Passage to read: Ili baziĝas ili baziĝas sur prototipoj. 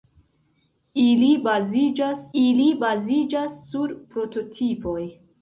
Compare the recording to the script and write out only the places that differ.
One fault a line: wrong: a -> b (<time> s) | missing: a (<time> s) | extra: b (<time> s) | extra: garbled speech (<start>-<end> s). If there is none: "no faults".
no faults